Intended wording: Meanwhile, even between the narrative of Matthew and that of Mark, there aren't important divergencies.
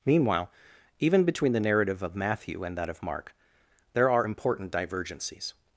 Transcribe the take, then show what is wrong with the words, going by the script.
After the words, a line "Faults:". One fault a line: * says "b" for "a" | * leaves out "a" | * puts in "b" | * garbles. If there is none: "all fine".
Meanwhile, even between the narrative of Matthew and that of Mark, there are important divergencies.
Faults:
* says "are" for "aren't"